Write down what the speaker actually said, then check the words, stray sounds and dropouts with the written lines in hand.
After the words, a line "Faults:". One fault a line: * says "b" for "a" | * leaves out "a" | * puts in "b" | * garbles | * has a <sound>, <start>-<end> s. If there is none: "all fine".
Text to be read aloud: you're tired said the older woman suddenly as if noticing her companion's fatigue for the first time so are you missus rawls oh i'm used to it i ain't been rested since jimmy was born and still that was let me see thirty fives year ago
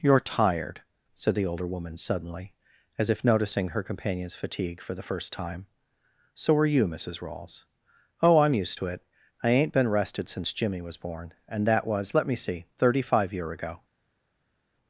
you're tired said the older woman suddenly as if noticing her companion's fatigue for the first time so are you missus rawls oh i'm used to it i ain't been rested since jimmy was born and that was let me see thirty five year ago
Faults:
* leaves out "still"
* says "five" for "fives"